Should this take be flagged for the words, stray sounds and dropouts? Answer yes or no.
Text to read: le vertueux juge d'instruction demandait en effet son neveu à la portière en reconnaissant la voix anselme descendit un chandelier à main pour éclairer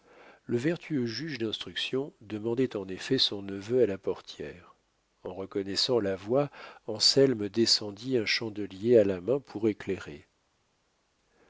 yes